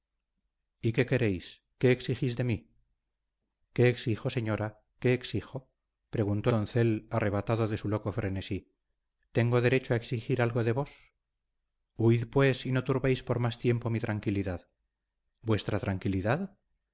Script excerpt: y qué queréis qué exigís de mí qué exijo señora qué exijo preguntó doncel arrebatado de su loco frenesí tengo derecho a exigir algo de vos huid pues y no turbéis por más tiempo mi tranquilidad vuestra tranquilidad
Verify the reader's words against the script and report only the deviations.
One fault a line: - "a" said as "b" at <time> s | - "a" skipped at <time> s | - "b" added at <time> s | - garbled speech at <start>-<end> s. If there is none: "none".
none